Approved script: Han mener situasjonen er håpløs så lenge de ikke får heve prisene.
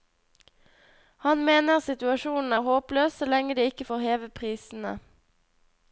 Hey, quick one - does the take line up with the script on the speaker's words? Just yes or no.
yes